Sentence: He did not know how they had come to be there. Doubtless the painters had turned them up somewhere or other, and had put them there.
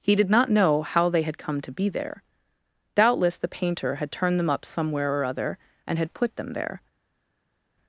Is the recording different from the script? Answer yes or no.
yes